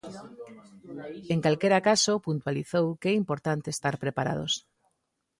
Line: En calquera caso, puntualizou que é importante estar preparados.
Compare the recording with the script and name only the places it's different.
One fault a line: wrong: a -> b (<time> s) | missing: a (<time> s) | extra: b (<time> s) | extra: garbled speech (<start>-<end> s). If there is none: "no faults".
no faults